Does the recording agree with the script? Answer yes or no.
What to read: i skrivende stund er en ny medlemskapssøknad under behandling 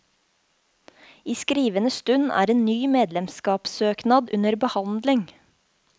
yes